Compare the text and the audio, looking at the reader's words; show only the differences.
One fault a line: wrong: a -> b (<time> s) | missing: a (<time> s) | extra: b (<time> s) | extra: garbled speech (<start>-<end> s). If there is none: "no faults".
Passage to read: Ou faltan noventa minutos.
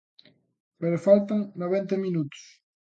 wrong: Ou -> Pero (0.8 s)